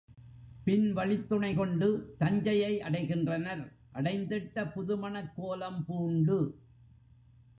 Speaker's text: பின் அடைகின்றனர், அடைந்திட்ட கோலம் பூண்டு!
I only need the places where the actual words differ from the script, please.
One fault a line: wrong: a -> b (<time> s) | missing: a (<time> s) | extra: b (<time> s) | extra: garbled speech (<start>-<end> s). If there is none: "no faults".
extra: வழித்துணை கொண்டு தஞ்சையை (0.9 s)
extra: புதுமணக் (4.7 s)